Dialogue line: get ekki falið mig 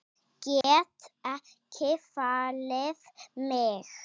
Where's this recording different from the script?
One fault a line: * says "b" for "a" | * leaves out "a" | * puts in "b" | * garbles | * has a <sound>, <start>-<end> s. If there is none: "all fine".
* has a dropout, 0.6-0.6 s